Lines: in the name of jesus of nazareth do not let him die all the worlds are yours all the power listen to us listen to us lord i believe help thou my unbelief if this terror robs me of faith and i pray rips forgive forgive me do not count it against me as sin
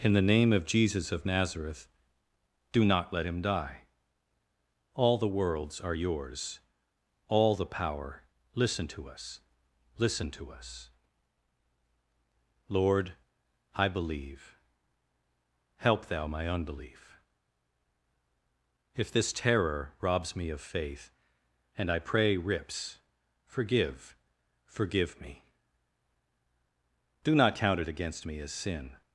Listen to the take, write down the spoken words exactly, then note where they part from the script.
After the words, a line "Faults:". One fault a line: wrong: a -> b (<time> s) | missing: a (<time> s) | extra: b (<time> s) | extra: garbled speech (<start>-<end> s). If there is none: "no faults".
in the name of jesus of nazareth do not let him die all the worlds are yours all the power listen to us listen to us lord i believe help thou my unbelief if this terror robs me of faith and i pray rips forgive forgive me do not count it against me as sin
Faults:
no faults